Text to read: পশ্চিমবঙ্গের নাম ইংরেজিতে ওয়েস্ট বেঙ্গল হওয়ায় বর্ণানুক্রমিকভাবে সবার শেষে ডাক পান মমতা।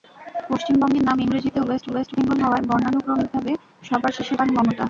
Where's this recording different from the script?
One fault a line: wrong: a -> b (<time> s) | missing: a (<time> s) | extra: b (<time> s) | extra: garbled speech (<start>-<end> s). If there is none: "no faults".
extra: ওয়েস্ট (1.9 s)
missing: ডাক (4.3 s)